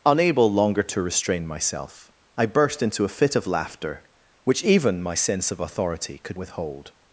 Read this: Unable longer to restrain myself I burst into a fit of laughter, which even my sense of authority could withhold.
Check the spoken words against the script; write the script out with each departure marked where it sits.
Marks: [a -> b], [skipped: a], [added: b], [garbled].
Unable longer to restrain myself I burst into a fit of laughter, which even my sense of authority could withhold.